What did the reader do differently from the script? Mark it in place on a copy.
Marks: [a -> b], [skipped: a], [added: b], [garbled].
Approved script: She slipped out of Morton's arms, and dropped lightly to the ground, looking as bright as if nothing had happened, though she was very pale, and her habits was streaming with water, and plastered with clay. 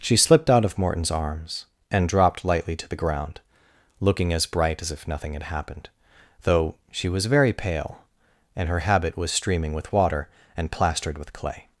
She slipped out of Morton's arms, and dropped lightly to the ground, looking as bright as if nothing had happened, though she was very pale, and her [habits -> habit] was streaming with water, and plastered with clay.